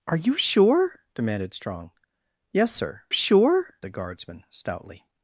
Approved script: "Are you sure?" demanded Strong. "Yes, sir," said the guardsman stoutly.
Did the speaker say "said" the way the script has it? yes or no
no